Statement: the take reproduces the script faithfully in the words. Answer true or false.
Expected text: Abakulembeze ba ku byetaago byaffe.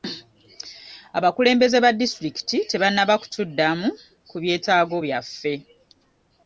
false